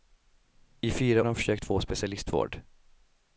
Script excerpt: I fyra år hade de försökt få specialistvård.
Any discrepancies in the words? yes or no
yes